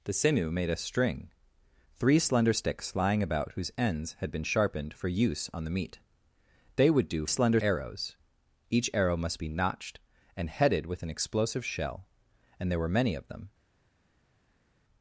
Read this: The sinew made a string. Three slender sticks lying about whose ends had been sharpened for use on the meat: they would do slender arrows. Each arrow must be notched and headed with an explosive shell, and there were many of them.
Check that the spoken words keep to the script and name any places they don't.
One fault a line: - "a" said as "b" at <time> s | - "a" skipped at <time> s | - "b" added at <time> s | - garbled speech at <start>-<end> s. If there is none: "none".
none